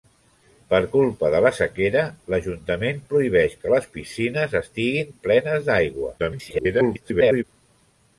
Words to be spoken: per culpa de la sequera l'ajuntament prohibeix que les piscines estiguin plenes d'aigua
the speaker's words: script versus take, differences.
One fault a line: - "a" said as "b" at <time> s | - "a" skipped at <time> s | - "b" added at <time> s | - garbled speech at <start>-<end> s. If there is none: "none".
- garbled speech at 6.2-7.4 s